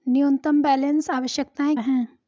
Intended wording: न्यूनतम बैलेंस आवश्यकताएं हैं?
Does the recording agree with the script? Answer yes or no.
yes